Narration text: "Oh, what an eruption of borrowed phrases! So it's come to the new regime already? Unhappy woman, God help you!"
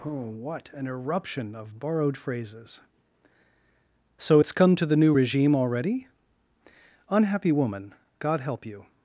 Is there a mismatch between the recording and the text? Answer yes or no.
no